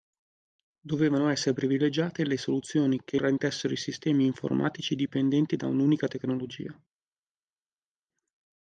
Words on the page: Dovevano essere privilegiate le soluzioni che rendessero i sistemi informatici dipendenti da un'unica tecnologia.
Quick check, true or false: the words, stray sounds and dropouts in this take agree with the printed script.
true